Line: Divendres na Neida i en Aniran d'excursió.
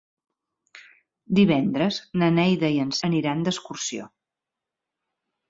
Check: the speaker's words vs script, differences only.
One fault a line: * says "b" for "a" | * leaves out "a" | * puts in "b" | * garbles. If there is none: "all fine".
all fine